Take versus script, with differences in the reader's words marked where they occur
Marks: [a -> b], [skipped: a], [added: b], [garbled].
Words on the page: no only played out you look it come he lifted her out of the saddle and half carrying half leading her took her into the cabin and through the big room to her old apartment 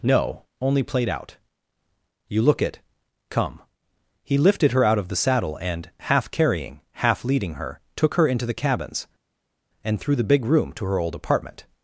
no only played out you look it come he lifted her out of the saddle and half carrying half leading her took her into the [cabin -> cabins] and through the big room to her old apartment